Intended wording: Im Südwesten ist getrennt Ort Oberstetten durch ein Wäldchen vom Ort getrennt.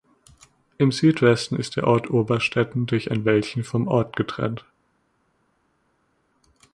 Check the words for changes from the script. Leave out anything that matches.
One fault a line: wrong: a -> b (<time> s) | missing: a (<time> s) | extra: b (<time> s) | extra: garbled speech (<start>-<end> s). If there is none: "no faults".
wrong: getrennt -> der (1.8 s)